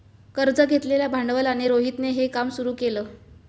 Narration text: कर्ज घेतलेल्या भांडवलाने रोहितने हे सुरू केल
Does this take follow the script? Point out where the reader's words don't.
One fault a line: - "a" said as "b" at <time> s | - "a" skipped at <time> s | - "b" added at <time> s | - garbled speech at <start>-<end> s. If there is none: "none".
- "काम" added at 2.3 s